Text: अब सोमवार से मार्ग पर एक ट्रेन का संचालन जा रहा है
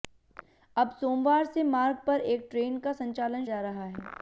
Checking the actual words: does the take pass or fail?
pass